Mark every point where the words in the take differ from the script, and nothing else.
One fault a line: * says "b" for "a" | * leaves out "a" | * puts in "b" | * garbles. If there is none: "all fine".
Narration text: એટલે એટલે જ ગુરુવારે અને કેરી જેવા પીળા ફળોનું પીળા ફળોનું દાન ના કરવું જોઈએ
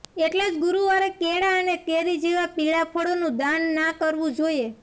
* leaves out "એટલે"
* puts in "કેળા"
* leaves out "પીળા ફળોનું"